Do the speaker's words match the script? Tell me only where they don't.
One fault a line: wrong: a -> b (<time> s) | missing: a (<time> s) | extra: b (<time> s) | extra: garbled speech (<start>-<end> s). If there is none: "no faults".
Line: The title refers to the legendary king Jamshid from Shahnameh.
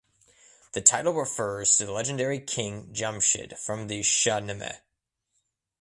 extra: the (3.9 s)